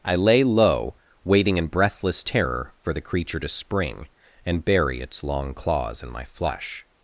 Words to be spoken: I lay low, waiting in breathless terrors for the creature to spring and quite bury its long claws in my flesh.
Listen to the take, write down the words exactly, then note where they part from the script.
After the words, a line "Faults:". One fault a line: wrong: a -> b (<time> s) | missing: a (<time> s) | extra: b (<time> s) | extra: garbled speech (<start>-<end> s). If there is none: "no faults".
I lay low, waiting in breathless terror for the creature to spring and bury its long claws in my flesh.
Faults:
wrong: terrors -> terror (2.2 s)
missing: quite (4.7 s)